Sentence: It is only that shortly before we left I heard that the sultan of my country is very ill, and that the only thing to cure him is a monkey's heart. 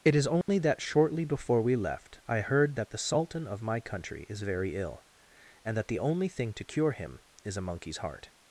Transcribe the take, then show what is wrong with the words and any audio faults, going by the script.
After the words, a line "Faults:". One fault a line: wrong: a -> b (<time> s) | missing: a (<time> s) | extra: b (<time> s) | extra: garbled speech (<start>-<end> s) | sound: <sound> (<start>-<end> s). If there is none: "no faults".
It is only that shortly before we left I heard that the sultan of my country is very ill, and that the only thing to cure him is a monkey's heart.
Faults:
sound: dropout (0.4-0.5 s)